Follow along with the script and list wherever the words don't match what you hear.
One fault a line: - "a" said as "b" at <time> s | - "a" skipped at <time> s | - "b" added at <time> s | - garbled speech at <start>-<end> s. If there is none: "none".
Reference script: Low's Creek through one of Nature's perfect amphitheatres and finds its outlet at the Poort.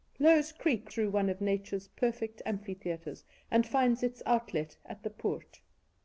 none